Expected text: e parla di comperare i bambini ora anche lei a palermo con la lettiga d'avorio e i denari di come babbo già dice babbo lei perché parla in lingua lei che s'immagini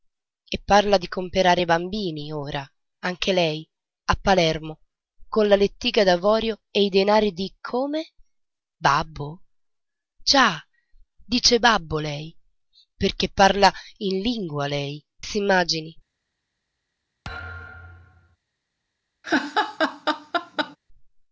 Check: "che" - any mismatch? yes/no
yes